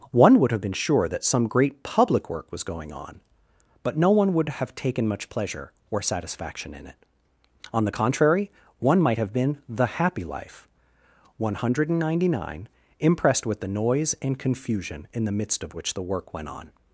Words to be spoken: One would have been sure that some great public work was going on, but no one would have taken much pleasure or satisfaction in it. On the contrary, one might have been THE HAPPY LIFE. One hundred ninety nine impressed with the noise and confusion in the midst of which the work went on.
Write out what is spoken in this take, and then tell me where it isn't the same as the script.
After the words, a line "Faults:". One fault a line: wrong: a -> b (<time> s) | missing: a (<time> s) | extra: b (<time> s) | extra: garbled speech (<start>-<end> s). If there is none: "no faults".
One would have been sure that some great public work was going on, but no one would have taken much pleasure or satisfaction in it. On the contrary, one might have been THE HAPPY LIFE. One hundred ninety nine impressed with the noise and confusion in the midst of which the work went on.
Faults:
no faults